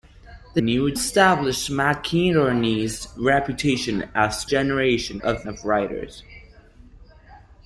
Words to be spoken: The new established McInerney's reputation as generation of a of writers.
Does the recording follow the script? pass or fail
pass